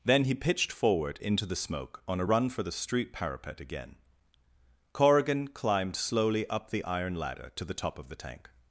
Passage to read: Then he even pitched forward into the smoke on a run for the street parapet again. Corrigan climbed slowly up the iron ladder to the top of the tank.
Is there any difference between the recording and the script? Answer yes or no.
yes